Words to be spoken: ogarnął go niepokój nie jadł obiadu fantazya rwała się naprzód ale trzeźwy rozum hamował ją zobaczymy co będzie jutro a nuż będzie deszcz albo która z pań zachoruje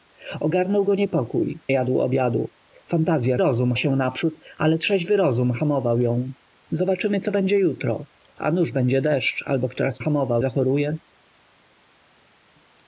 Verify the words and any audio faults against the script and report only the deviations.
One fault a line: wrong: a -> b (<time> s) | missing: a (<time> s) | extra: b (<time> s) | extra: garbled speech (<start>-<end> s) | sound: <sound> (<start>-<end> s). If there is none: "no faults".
missing: nie (1.6 s)
wrong: rwała -> rozum (3.4 s)
wrong: pań -> hamował (10.0 s)